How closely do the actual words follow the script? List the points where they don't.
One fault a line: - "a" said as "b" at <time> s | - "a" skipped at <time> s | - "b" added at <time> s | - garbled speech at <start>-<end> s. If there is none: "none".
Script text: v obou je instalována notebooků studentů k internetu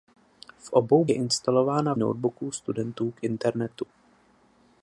none